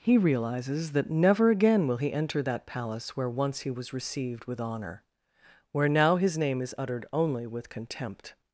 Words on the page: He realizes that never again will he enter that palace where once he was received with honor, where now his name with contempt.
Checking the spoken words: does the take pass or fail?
fail